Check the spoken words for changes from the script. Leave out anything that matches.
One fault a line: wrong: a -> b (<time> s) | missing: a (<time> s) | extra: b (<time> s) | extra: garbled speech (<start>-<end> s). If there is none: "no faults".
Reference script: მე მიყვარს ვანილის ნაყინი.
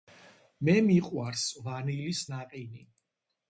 no faults